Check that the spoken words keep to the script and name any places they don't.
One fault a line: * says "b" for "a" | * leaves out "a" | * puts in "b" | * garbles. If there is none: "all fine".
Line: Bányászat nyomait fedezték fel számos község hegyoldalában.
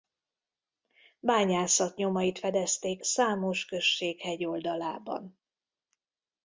* leaves out "fel"